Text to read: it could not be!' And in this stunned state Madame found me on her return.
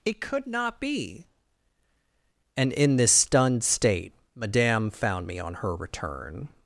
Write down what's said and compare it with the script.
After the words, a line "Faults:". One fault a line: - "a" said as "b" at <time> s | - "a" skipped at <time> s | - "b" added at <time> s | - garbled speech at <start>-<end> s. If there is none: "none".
it could not be!' And in this stunned state Madame found me on her return.
Faults:
none